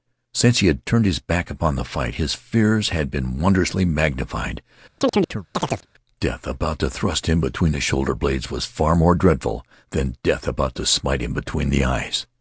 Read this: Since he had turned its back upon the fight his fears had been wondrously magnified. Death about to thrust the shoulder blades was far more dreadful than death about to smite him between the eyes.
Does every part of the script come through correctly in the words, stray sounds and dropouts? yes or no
no